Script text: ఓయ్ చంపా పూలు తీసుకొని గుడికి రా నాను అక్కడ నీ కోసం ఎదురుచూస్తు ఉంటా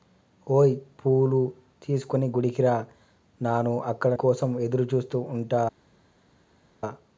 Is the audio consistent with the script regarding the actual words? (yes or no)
no